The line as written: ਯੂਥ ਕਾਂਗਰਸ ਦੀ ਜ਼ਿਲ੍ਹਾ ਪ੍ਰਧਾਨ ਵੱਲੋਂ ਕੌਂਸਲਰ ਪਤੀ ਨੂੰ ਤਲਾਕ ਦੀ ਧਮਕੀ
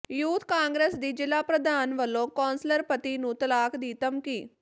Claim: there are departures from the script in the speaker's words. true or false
false